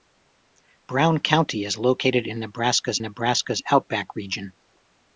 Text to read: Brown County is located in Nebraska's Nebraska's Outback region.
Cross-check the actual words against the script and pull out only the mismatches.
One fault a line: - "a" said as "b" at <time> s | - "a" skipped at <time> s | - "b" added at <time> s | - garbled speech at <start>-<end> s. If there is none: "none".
none